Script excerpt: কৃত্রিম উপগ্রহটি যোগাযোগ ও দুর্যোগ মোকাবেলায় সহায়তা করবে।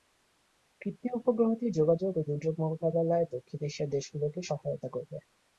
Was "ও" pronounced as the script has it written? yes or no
yes